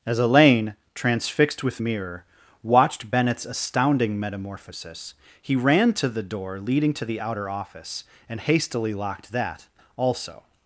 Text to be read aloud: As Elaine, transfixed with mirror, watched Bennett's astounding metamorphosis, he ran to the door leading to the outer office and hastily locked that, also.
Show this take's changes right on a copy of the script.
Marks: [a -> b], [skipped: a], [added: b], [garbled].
As Elaine, transfixed with mirror, watched Bennett's astounding metamorphosis, he ran to the door leading to the outer office and hastily locked that, also.